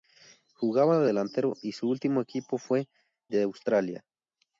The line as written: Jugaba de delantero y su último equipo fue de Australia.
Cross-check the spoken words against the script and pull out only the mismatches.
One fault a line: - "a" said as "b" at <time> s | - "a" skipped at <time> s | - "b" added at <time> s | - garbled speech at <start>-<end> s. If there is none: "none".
none